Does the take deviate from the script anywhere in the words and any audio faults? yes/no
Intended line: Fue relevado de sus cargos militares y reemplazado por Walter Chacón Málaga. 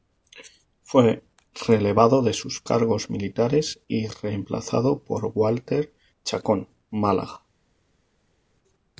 no